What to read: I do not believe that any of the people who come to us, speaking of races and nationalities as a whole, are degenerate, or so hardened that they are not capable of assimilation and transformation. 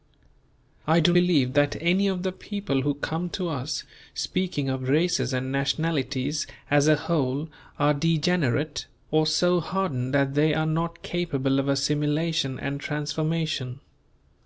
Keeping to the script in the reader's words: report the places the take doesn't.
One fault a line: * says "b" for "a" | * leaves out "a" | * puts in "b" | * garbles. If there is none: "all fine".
* leaves out "not"